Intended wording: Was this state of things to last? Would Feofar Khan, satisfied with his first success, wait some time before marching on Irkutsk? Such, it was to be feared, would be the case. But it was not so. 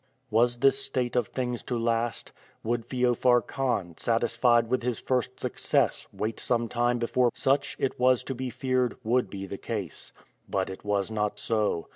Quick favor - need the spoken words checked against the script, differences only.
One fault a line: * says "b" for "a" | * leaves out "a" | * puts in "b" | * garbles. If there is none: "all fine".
* leaves out "marching on Irkutsk"